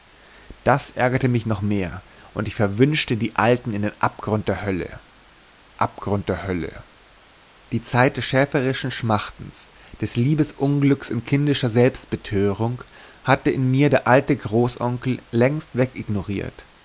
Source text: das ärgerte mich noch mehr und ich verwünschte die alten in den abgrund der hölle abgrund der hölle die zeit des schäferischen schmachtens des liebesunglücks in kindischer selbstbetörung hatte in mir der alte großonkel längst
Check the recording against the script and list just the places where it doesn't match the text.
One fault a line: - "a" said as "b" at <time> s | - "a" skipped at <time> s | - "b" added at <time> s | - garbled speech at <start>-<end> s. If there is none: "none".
none